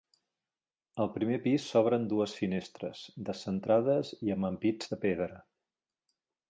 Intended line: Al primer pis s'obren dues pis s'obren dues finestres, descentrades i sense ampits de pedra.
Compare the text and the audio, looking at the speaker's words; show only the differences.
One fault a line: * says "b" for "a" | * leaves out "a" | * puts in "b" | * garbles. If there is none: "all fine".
* leaves out "pis s'obren dues"
* says "amb" for "sense"